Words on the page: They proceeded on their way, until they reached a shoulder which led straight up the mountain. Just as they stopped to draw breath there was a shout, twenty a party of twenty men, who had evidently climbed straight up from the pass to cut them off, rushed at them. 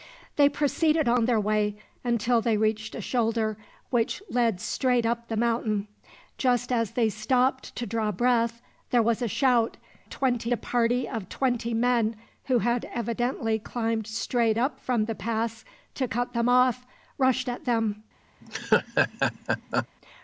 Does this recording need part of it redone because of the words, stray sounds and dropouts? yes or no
yes